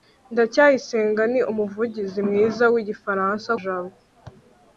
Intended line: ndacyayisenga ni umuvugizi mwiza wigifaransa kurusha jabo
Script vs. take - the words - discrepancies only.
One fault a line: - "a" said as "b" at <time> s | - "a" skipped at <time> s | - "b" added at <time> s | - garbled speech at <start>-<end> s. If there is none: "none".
- "kurusha" skipped at 3.5 s